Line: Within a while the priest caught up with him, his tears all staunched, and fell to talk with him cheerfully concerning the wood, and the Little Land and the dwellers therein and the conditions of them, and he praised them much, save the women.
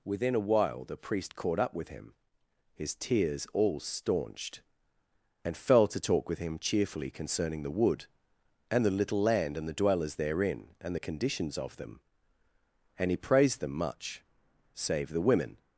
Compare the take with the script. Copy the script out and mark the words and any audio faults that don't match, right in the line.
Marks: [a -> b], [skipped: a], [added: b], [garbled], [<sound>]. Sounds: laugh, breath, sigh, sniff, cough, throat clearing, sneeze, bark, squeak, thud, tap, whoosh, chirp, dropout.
Within a while the priest caught up with him, his tears all staunched, and fell to talk with him cheerfully concerning the wood, and the Little Land and the dwellers therein and the conditions of them, and he praised them much, save the women.